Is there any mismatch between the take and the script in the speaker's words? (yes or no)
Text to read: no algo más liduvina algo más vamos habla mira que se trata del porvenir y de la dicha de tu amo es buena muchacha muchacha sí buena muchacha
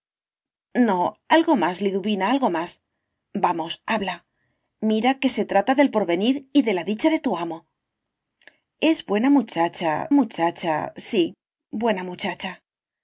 no